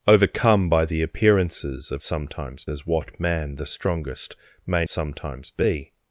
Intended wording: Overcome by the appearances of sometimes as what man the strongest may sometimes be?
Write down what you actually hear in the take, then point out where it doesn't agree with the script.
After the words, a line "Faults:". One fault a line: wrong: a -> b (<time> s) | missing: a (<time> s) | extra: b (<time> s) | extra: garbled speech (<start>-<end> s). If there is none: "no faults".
Overcome by the appearances of sometimes as what man the strongest may sometimes be?
Faults:
no faults